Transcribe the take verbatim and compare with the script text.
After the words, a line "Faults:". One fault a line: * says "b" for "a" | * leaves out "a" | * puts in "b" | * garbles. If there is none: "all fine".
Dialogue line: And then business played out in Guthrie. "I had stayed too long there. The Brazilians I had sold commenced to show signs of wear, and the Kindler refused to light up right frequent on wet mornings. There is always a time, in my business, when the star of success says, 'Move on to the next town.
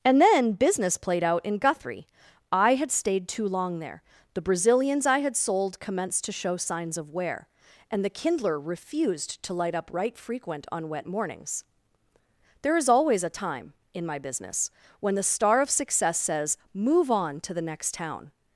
And then business played out in Guthrie. "I had stayed too long there. The Brazilians I had sold commenced to show signs of wear, and the Kindler refused to light up right frequent on wet mornings. There is always a time, in my business, when the star of success says, 'Move on to the next town.
Faults:
all fine